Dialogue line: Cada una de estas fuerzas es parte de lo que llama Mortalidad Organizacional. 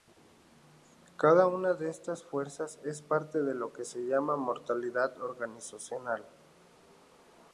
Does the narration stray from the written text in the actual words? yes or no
yes